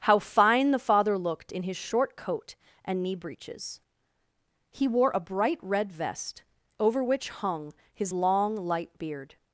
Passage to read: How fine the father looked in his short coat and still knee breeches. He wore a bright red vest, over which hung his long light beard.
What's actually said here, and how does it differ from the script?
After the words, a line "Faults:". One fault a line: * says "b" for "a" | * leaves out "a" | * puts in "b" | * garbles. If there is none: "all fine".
How fine the father looked in his short coat and knee breeches. He wore a bright red vest, over which hung his long light beard.
Faults:
* leaves out "still"